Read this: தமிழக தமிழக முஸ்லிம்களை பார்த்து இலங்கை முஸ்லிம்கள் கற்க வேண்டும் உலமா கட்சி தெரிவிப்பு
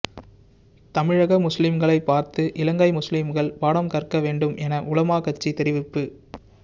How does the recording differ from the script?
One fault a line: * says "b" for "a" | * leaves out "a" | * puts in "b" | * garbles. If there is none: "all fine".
* leaves out "தமிழக"
* puts in "பாடம்"
* puts in "என"